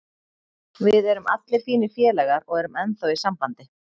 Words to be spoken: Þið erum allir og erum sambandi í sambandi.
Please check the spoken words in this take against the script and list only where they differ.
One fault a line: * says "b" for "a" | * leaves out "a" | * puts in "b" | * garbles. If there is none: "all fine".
* says "Við" for "Þið"
* puts in "fínir félagar"
* says "ennþá" for "sambandi"